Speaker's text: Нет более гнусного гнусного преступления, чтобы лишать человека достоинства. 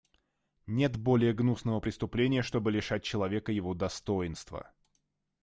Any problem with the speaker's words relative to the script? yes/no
yes